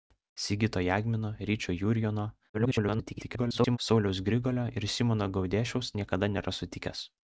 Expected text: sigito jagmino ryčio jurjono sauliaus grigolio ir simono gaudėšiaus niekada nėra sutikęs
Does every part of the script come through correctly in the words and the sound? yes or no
no